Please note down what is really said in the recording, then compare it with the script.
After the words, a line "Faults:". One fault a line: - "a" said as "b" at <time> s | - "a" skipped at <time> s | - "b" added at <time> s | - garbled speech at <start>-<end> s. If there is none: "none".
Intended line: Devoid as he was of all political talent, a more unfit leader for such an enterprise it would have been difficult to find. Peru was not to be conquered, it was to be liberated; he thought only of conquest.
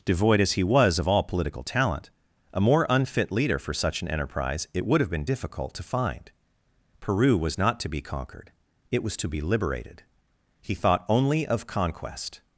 Devoid as he was of all political talent, a more unfit leader for such an enterprise it would have been difficult to find. Peru was not to be conquered, it was to be liberated; he thought only of conquest.
Faults:
none